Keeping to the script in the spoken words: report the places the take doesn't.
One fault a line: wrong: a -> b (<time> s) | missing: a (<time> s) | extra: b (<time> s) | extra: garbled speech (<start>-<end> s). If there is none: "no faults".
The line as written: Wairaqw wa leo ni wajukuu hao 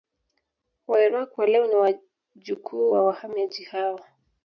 extra: wa wahamiaji (2.9 s)